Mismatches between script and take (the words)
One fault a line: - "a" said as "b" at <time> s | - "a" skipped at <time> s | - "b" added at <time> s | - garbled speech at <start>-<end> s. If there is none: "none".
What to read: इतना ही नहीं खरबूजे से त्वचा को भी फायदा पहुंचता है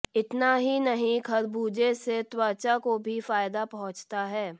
none